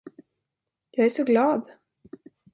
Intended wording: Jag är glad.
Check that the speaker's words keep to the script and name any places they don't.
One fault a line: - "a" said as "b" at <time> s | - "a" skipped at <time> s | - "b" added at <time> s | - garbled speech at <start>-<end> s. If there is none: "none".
- "så" added at 1.1 s